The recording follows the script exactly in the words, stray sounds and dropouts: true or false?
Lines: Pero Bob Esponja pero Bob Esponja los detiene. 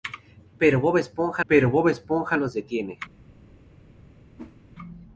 false